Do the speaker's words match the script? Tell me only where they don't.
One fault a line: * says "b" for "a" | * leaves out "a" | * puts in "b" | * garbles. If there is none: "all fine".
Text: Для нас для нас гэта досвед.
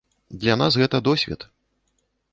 * leaves out "для нас"